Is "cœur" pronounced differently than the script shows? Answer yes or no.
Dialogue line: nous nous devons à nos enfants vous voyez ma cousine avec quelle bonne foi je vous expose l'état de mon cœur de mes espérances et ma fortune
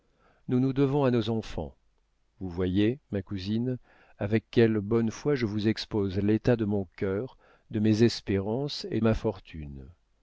no